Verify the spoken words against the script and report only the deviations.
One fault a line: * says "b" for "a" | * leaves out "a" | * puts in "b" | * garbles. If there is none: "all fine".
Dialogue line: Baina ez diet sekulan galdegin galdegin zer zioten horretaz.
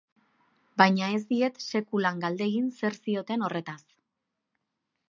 * leaves out "galdegin"